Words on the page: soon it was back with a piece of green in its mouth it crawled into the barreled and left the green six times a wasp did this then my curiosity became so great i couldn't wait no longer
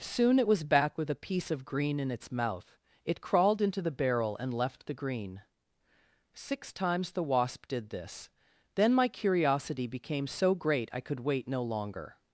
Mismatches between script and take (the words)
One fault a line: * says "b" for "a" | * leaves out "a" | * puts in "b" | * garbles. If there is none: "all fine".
* says "barrel" for "barreled"
* says "the" for "a"
* says "could" for "couldn't"